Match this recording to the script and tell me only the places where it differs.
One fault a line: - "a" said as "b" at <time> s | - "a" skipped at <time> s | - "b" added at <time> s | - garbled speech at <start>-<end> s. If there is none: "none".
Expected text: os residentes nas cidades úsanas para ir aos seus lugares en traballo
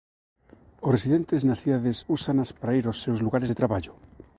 - "en" said as "de" at 3.5 s